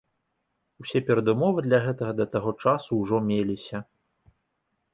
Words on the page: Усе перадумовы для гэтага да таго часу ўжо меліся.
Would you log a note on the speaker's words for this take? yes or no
no